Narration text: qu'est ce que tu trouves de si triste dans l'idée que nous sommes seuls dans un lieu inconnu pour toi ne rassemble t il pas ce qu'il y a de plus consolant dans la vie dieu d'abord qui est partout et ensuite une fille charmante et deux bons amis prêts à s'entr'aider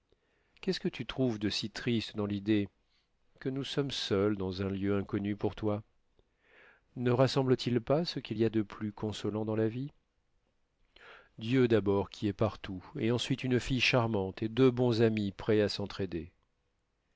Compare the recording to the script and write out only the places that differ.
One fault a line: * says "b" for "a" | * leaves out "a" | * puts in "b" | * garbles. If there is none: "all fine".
all fine